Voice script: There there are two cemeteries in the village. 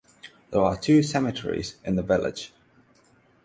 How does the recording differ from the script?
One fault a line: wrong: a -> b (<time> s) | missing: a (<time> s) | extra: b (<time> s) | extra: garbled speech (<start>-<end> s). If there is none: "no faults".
missing: there (0.6 s)